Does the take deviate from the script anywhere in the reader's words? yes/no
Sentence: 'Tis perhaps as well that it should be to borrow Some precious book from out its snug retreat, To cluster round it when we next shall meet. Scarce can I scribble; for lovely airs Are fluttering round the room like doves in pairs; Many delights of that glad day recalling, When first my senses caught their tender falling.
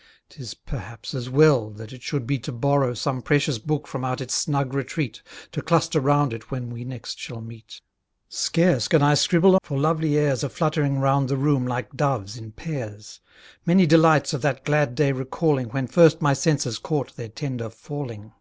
no